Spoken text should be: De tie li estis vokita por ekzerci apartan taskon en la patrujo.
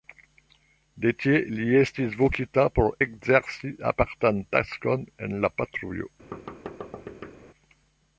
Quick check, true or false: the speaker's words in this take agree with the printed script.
true